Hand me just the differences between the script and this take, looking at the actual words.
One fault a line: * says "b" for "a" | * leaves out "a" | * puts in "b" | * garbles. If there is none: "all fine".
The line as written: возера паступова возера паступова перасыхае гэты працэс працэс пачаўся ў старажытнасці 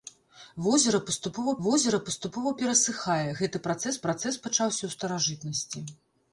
all fine